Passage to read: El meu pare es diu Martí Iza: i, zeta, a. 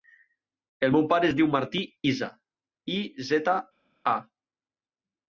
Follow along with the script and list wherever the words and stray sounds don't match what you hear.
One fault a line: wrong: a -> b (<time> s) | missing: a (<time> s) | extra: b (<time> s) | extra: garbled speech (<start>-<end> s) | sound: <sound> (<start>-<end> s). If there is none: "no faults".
no faults